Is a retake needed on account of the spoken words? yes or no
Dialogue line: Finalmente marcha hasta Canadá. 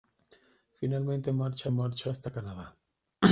yes